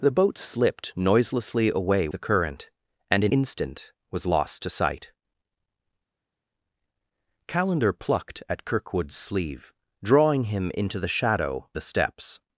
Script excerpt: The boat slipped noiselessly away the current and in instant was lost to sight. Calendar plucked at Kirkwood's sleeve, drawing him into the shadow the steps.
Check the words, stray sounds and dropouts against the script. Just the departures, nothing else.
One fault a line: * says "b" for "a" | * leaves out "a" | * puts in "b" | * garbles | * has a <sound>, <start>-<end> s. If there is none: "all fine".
all fine